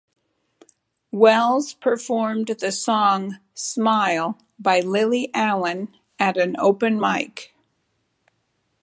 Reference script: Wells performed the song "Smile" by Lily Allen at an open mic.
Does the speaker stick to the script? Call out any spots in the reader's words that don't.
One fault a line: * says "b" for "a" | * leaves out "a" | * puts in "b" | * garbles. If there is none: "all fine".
all fine